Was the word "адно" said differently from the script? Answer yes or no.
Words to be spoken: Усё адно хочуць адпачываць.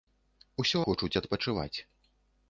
yes